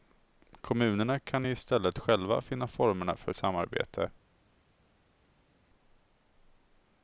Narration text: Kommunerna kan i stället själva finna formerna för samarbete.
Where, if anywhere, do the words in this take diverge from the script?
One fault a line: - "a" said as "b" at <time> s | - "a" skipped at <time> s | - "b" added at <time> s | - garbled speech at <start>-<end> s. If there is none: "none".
none